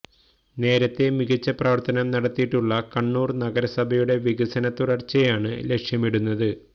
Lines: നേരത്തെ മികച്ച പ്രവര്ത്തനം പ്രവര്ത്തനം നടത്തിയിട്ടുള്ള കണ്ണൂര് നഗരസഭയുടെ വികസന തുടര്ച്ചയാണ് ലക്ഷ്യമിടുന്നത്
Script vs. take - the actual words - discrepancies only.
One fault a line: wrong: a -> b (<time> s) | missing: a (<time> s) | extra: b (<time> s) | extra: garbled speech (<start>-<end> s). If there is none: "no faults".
missing: പ്രവര്ത്തനം (2.1 s)